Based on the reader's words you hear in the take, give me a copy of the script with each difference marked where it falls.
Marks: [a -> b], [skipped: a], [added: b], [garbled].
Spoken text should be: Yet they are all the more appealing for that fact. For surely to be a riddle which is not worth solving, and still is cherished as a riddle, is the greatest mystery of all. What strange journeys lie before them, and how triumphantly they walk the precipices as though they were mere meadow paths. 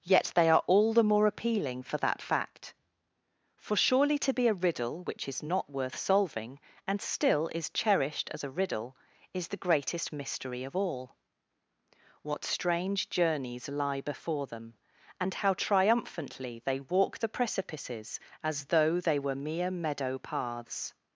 Yet they are all the more appealing for that fact. For surely to be a riddle which is not worth solving, and still is cherished as a riddle, is the greatest mystery of all. What strange journeys lie before them, and how triumphantly they walk the precipices as though they were mere meadow paths.